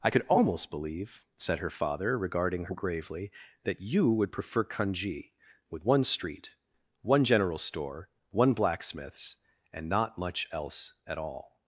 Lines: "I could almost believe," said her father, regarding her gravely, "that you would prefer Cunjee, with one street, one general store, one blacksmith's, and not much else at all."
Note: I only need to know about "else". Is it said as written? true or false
true